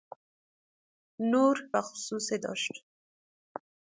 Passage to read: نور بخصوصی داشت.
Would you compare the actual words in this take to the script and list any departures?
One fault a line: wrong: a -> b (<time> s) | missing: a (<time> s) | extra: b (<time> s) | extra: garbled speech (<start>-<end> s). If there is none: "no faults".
no faults